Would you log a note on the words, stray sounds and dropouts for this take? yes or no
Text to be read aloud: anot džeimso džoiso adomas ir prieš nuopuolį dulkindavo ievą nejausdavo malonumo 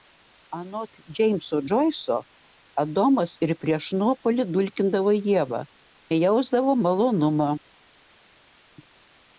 no